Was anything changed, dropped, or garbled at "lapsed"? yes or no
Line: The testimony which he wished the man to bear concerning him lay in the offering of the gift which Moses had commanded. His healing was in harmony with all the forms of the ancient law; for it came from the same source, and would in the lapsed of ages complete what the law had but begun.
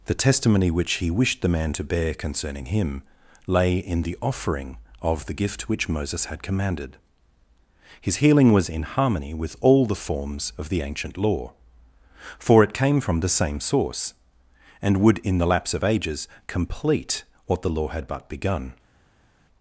yes